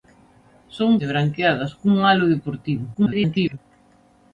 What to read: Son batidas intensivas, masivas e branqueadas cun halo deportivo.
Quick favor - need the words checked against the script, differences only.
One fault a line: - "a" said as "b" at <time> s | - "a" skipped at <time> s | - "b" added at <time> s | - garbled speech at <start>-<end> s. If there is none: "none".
- "batidas intensivas masivas" skipped at 0.9 s
- garbled speech at 2.9-3.6 s